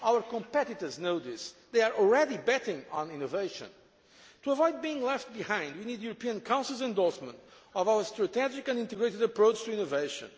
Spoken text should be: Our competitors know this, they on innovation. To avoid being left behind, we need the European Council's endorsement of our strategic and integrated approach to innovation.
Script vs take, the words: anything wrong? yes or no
yes